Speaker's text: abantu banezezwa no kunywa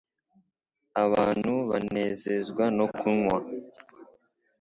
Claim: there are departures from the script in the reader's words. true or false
false